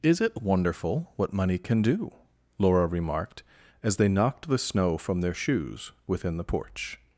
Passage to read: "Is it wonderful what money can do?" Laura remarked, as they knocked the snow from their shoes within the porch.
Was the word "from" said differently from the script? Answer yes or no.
no